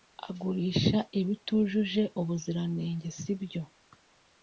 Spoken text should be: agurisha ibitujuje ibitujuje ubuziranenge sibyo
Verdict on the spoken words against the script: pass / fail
fail